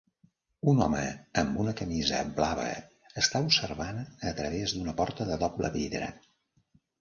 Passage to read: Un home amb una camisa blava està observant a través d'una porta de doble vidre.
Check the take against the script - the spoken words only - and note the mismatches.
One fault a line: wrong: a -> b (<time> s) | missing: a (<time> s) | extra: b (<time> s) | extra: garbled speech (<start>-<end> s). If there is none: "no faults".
no faults